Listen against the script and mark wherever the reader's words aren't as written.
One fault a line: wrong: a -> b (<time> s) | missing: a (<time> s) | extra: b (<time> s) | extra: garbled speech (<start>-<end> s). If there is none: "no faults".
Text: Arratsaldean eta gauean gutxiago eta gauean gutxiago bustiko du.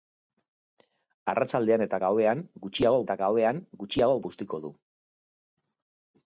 no faults